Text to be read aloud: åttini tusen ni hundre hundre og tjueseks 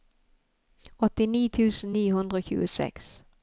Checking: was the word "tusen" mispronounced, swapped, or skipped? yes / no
no